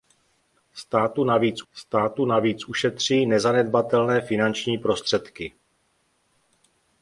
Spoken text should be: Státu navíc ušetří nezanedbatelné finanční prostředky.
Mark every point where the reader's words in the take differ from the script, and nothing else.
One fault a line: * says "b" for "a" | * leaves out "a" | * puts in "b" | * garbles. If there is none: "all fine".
* puts in "státu navíc"